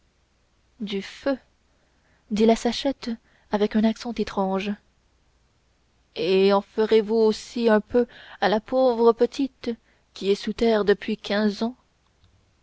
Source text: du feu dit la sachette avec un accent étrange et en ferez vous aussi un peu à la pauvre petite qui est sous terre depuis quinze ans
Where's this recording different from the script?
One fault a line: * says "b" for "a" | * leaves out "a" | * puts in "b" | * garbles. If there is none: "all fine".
all fine